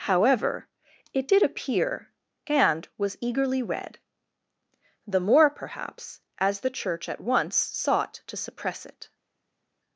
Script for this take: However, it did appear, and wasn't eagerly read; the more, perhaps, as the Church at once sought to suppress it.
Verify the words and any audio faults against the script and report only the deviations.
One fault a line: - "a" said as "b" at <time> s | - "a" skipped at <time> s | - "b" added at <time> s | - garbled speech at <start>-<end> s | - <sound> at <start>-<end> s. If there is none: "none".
- "wasn't" said as "was" at 3.0 s